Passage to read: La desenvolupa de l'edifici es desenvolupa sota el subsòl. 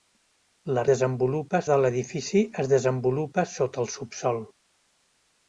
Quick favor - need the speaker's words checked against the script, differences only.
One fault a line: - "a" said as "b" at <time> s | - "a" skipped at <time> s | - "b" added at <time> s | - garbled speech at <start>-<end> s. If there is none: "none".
none